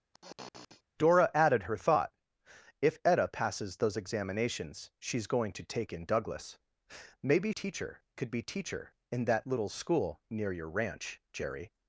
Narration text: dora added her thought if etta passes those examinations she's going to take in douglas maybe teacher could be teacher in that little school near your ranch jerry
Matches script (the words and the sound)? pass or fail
fail